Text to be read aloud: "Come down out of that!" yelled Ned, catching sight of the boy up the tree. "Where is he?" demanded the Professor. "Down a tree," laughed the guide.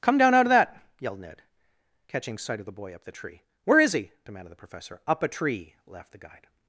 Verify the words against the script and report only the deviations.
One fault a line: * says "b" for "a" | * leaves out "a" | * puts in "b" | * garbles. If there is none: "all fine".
* says "Up" for "Down"